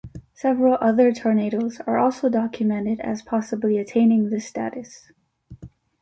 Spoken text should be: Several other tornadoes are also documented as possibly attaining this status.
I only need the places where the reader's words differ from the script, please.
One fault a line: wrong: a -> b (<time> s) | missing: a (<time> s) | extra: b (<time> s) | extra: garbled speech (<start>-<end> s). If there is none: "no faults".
no faults